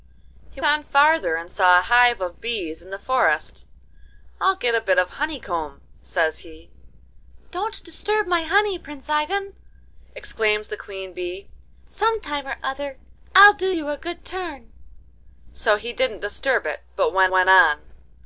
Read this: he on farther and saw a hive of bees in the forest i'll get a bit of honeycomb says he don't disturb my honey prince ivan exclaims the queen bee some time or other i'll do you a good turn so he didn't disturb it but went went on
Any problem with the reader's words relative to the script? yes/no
no